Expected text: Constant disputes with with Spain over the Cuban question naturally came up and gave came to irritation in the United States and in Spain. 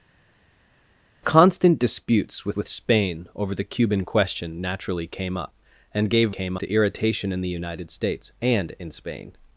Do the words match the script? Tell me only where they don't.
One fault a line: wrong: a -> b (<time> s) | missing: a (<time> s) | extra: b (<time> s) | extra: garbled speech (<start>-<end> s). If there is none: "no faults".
no faults